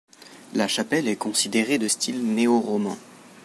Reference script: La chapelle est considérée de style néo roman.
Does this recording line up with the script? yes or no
yes